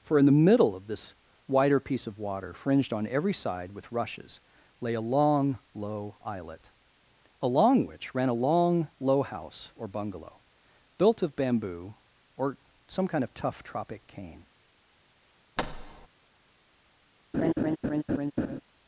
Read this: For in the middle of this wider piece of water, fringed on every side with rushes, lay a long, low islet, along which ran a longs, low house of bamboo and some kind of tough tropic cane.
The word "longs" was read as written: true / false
false